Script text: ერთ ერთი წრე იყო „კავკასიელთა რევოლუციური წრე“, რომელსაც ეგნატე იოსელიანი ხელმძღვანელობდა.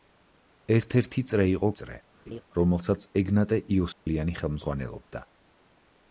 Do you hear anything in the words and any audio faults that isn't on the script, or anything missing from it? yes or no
yes